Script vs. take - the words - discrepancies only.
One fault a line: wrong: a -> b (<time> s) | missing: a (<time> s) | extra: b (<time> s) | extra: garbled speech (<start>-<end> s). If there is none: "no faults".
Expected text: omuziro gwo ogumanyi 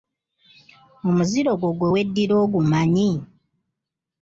extra: gwe weddira (1.8 s)